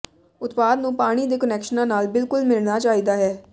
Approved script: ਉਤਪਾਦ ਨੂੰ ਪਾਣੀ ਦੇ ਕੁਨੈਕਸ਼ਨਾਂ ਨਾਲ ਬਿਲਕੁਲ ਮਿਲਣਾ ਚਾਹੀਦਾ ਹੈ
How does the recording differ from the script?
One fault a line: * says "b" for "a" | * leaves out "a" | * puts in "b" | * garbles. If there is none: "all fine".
all fine